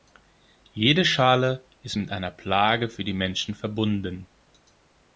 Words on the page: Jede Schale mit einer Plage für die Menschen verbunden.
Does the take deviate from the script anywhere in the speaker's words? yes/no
yes